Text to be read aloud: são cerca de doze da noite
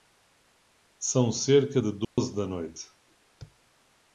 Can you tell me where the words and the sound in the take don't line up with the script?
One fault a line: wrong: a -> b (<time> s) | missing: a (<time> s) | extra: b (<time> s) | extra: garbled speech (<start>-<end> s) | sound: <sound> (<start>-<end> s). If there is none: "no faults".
sound: dropout (2.0-2.2 s)